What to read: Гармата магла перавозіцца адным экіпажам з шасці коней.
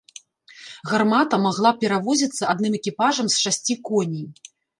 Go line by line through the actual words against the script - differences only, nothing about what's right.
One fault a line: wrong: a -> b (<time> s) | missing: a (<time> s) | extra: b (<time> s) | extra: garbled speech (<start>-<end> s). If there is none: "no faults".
no faults